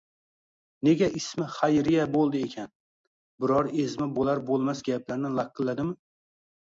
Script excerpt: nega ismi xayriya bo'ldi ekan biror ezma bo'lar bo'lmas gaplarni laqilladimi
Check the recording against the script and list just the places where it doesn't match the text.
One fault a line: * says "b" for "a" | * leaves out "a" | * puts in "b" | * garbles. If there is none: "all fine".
all fine